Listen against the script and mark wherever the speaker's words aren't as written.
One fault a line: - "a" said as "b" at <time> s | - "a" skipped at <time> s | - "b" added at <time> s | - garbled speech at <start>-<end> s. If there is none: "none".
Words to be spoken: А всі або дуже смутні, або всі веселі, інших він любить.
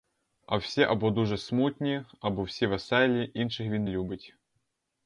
none